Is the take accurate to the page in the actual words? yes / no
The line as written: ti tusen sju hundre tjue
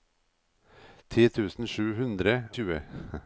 yes